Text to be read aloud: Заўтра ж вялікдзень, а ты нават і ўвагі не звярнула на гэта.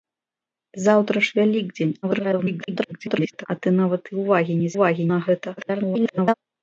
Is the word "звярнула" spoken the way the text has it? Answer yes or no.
no